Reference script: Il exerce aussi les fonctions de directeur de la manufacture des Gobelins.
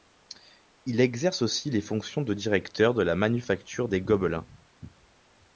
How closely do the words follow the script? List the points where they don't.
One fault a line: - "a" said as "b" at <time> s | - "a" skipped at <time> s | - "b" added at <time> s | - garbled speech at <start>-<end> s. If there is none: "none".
none